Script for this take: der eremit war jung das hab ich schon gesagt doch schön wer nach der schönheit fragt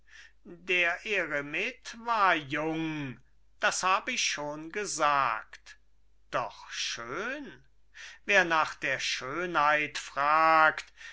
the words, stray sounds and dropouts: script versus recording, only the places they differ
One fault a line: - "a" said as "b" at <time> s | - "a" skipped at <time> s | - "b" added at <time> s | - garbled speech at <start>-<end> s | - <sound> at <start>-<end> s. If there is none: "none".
none